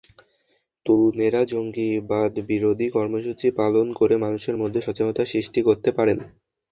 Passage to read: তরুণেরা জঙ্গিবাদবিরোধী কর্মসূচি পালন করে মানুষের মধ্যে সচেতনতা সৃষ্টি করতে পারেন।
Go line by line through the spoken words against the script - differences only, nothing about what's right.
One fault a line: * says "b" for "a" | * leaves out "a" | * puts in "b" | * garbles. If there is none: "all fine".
all fine